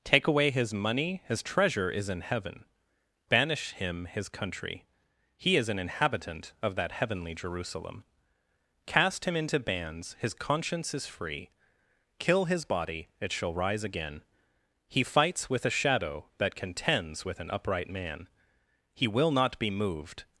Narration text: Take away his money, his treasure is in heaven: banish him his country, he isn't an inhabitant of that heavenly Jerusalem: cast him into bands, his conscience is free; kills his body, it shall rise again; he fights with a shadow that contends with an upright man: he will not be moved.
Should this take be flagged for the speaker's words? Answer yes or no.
yes